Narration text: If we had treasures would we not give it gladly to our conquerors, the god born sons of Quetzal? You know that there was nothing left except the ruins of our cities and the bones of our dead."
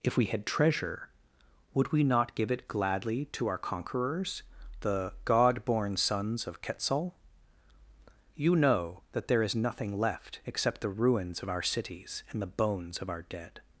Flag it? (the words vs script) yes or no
yes